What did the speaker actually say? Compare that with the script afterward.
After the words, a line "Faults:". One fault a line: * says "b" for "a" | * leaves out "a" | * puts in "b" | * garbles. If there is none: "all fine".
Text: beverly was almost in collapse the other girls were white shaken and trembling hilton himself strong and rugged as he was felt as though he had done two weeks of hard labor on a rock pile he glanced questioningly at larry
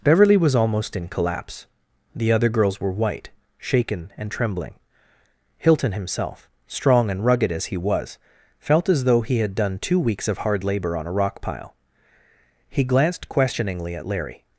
beverly was almost in collapse the other girls were white shaken and trembling hilton himself strong and rugged as he was felt as though he had done two weeks of hard labor on a rock pile he glanced questioningly at larry
Faults:
all fine